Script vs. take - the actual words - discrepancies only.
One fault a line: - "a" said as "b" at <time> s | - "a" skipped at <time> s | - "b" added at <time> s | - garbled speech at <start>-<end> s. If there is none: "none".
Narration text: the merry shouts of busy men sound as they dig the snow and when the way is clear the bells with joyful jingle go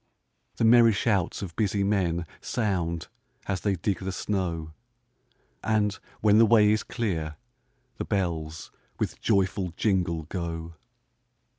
none